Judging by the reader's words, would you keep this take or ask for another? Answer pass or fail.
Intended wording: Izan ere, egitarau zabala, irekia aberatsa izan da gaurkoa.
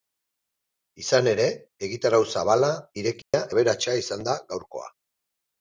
pass